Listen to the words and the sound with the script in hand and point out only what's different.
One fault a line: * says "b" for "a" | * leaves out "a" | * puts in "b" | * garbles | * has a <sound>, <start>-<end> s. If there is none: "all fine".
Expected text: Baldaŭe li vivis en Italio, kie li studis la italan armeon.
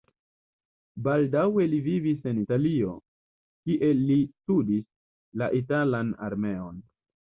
all fine